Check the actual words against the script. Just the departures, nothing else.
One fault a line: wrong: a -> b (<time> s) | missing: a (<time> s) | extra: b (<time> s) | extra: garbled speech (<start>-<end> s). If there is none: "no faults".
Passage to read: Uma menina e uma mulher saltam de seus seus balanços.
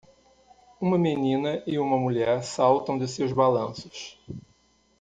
missing: seus (3.3 s)